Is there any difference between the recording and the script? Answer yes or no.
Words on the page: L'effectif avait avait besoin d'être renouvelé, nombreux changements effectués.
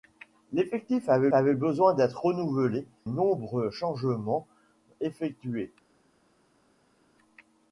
no